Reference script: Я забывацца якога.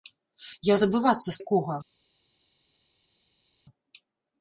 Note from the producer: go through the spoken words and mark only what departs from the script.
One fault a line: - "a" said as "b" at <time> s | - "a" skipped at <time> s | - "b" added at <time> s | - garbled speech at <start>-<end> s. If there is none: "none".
none